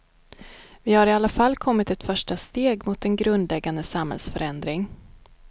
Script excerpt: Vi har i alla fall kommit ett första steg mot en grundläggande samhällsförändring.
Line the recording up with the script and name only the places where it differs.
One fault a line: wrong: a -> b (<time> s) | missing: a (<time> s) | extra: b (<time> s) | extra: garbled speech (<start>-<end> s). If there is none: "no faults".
no faults